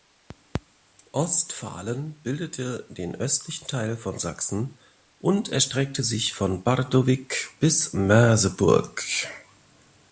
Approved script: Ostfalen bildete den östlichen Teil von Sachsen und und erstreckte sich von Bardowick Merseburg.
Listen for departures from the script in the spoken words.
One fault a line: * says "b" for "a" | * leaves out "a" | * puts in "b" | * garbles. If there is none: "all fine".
* leaves out "und"
* puts in "bis"